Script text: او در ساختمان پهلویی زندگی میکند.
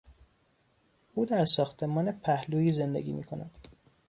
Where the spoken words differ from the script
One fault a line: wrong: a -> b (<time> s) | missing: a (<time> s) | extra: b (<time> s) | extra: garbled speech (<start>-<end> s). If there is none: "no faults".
no faults